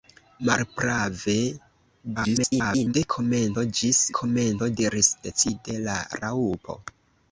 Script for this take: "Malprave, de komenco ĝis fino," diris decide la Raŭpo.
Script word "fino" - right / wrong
wrong